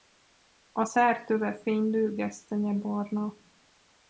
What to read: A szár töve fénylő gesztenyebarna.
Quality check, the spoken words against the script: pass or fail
pass